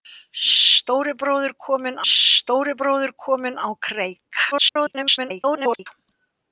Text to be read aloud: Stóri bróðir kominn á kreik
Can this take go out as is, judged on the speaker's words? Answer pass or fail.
fail